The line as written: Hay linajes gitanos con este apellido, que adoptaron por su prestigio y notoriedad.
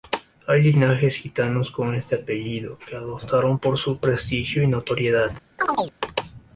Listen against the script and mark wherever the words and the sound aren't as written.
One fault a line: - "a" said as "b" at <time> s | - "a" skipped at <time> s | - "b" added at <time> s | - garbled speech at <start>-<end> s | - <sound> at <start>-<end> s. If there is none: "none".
- chirp at 5.6-5.9 s